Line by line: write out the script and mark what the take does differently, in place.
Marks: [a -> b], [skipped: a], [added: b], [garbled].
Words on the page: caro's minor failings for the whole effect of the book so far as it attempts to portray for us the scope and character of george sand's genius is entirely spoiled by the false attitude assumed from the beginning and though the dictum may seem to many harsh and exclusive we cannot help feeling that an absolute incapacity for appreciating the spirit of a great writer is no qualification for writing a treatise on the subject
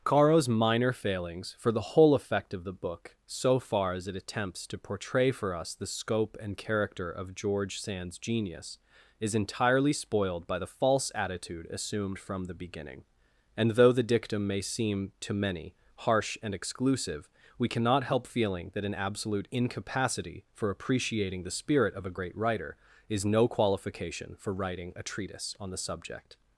caro's minor failings for the whole effect of the book so far as it attempts to portray for us the scope and character of george sand's genius is entirely spoiled by the false attitude assumed from the beginning and though the dictum may seem to many harsh and exclusive we cannot help feeling that an absolute incapacity for appreciating the spirit of a great writer is no qualification for writing a treatise on the subject